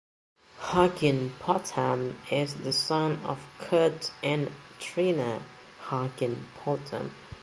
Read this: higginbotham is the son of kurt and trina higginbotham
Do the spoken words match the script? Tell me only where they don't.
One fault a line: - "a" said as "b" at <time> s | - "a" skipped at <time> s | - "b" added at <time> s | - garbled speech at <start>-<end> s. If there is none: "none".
none